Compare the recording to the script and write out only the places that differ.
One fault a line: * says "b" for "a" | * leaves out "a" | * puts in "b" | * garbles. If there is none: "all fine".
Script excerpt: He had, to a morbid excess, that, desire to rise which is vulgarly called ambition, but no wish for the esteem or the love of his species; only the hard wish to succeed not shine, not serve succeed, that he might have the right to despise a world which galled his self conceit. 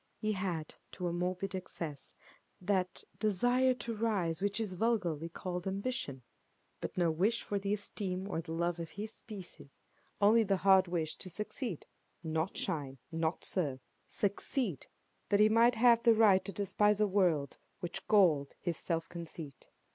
all fine